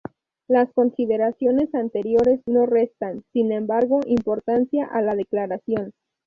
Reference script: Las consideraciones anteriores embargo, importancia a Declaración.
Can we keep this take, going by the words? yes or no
no